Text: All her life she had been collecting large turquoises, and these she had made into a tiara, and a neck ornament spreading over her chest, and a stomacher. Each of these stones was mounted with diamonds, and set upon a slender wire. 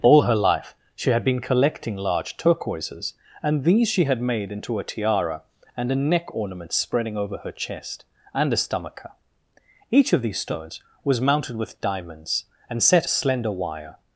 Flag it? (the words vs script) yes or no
yes